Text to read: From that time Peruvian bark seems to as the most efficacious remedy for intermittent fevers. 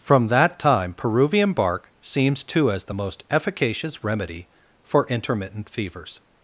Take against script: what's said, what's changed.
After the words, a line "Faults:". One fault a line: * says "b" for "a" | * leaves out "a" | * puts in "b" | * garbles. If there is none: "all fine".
From that time Peruvian bark seems to as the most efficacious remedy for intermittent fevers.
Faults:
all fine